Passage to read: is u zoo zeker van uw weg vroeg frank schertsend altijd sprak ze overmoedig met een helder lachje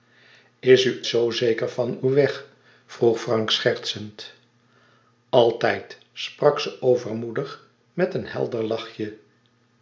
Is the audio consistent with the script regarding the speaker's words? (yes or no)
yes